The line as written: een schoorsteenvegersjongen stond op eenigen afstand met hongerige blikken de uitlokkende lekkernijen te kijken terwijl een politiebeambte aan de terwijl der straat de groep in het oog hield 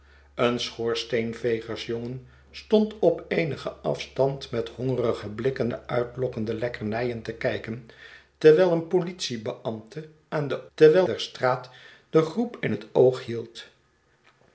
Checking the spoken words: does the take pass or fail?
pass